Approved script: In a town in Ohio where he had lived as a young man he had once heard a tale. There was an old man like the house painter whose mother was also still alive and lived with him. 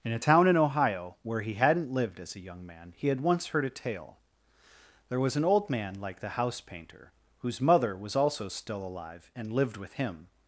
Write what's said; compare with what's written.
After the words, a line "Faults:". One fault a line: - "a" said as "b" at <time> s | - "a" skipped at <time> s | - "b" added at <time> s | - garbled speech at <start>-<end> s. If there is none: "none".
In a town in Ohio where he hadn't lived as a young man he had once heard a tale. There was an old man like the house painter whose mother was also still alive and lived with him.
Faults:
- "had" said as "hadn't" at 1.5 s